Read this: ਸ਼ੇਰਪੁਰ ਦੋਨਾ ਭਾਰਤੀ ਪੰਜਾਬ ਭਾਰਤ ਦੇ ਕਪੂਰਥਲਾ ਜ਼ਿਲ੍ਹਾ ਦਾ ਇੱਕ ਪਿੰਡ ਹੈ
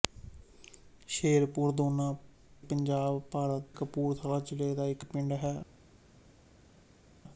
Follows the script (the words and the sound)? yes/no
no